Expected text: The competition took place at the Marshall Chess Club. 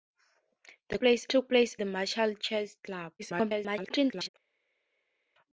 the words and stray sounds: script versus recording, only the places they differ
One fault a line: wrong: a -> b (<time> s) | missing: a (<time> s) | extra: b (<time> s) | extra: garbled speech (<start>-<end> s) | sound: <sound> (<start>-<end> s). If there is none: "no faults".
wrong: competition -> place (1.0 s)
missing: at (1.8 s)
extra: garbled speech (3.2-4.3 s)